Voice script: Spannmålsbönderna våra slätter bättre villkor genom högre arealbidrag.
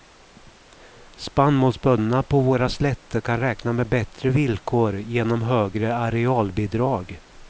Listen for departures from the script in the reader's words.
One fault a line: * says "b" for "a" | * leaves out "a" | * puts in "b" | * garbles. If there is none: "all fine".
* puts in "på"
* puts in "kan räkna med"